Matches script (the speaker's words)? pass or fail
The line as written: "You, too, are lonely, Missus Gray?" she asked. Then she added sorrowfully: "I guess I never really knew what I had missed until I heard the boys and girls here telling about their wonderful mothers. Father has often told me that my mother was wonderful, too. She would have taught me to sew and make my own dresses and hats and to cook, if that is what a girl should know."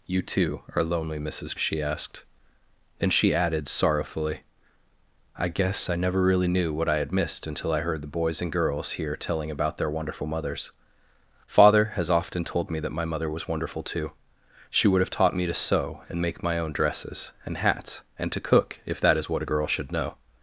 fail